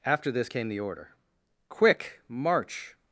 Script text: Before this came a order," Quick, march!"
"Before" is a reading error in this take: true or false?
true